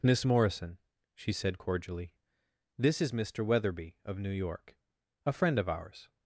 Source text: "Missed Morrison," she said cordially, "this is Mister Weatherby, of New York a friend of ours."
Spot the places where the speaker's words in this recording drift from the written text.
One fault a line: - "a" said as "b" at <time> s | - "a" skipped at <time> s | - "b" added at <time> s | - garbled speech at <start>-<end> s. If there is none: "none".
- "Missed" said as "Miss" at 0.0 s